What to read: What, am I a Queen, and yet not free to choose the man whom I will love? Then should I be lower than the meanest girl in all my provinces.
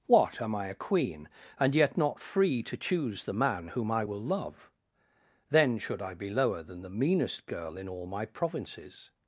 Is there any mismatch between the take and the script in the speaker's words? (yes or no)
no